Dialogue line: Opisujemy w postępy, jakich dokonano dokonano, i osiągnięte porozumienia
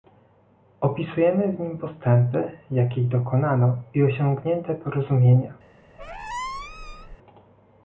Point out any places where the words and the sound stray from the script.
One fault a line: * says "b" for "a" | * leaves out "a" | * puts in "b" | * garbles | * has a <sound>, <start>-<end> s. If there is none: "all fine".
* puts in "nim"
* leaves out "dokonano"
* has a squeak, 6.0-7.2 s